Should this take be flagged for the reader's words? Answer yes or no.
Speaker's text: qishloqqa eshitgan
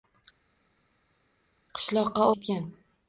no